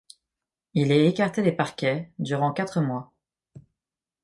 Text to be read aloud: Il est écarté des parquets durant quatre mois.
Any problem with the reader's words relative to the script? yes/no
no